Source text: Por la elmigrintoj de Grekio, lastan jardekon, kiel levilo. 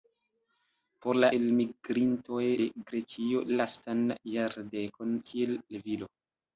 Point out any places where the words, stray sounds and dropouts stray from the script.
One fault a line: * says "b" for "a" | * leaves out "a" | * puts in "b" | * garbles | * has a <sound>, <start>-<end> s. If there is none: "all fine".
all fine